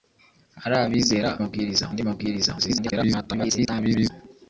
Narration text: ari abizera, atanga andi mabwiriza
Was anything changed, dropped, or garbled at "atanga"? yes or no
yes